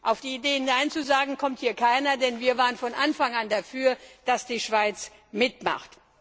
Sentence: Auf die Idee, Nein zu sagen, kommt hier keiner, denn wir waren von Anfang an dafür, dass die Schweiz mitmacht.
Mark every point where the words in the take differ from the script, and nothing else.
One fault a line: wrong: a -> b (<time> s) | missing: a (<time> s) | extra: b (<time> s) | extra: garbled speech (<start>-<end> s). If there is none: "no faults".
no faults